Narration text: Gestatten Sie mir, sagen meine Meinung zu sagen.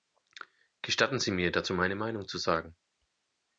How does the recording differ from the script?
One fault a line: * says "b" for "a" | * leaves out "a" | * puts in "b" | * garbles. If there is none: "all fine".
* says "dazu" for "sagen"